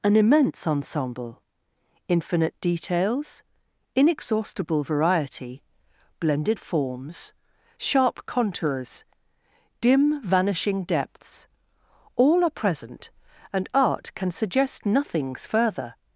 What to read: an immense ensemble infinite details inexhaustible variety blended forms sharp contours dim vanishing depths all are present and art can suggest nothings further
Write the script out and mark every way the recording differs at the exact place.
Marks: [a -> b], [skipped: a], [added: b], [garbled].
an immense ensemble infinite details inexhaustible variety blended forms sharp contours dim vanishing depths all are present and art can suggest nothings further